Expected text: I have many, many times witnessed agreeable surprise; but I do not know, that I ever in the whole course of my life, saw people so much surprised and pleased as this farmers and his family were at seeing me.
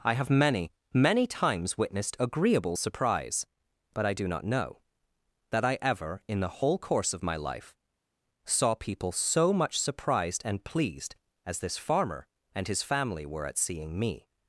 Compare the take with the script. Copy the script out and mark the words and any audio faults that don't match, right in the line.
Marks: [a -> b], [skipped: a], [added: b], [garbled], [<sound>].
I have many, many times witnessed agreeable surprise; but I do not know, that I ever in the whole course of my life, saw people so much surprised and pleased as this [farmers -> farmer] and his family were at seeing me.